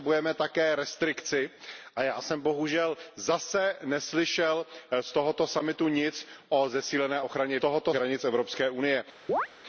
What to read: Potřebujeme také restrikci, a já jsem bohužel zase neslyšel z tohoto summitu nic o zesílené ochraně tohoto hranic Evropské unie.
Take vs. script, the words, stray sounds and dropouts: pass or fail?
fail